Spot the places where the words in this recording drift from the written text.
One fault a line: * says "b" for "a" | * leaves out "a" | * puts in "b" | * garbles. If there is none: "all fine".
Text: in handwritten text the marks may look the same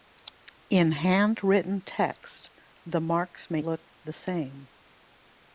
all fine